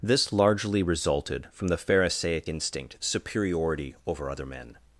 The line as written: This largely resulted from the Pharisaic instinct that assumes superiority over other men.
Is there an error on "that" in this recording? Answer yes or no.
yes